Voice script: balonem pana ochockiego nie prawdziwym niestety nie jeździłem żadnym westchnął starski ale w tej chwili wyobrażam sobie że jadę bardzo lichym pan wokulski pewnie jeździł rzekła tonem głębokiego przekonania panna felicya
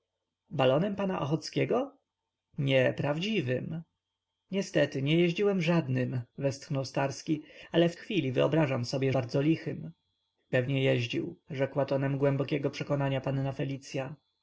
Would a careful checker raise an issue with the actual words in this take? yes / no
yes